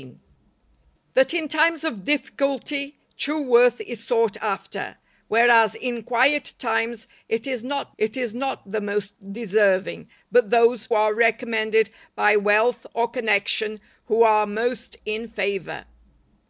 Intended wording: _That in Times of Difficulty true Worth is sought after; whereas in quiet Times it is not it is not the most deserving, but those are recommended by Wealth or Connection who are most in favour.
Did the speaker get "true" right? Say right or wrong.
right